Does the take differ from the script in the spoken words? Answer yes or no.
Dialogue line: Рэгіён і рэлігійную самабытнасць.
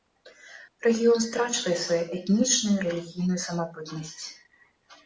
yes